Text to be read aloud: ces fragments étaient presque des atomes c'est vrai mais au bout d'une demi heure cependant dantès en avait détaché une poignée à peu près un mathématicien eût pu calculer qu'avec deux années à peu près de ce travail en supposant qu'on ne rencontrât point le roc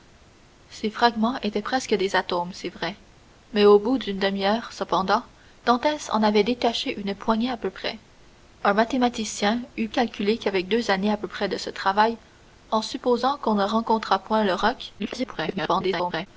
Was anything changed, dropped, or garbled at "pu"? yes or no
yes